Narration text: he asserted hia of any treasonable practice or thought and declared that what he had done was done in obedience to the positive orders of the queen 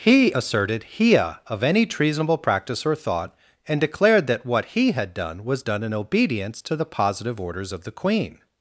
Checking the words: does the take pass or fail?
pass